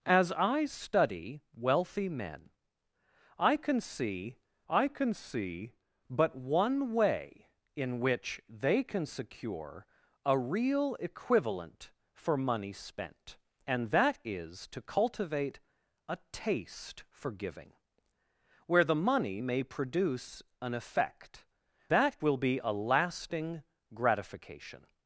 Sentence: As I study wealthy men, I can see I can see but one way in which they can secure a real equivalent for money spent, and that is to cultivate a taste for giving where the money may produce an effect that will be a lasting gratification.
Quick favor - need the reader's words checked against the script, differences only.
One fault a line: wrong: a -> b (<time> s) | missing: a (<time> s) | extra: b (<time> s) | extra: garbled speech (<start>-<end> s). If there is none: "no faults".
no faults